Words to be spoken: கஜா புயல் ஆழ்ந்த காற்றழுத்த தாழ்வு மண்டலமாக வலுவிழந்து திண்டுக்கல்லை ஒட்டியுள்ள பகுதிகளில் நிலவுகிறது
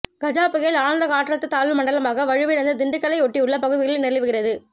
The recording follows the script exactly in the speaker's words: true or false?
true